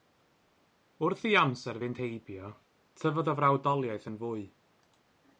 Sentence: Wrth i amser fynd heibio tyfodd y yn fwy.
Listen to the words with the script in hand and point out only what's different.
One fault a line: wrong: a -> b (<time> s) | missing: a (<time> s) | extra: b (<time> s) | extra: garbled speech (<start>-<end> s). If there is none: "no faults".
extra: frawdoliaeth (3.4 s)